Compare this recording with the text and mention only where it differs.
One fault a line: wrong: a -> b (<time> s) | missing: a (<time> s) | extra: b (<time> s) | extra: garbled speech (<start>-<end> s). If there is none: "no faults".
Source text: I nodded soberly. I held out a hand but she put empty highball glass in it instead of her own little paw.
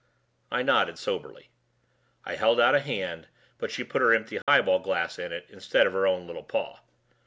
extra: her (4.0 s)